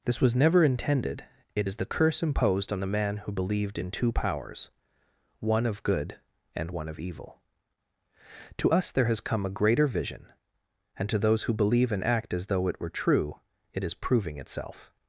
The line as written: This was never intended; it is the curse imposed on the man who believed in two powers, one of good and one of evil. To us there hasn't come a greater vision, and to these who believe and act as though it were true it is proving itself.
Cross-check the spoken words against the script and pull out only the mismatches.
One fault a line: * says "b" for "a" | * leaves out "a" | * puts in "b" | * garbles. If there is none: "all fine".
* says "has" for "hasn't"
* says "those" for "these"